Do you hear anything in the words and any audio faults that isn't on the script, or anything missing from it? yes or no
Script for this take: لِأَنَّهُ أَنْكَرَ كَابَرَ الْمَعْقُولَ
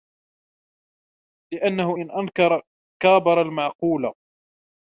yes